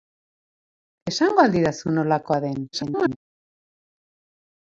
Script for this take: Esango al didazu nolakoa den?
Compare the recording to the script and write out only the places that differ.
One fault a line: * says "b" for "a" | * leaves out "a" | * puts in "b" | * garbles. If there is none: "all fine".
* garbles